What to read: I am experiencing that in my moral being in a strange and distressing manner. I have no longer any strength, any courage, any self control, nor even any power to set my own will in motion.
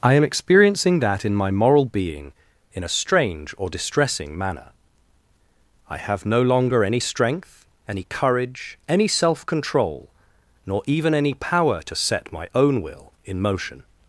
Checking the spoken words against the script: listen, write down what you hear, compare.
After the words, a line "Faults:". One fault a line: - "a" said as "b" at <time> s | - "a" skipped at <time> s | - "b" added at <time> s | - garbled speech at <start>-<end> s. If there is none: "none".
I am experiencing that in my moral being in a strange or distressing manner. I have no longer any strength, any courage, any self control, nor even any power to set my own will in motion.
Faults:
- "and" said as "or" at 3.6 s